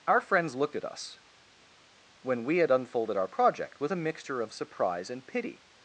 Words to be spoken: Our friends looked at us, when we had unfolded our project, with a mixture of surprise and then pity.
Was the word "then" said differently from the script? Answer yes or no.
yes